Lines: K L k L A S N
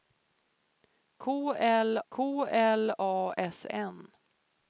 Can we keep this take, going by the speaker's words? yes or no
yes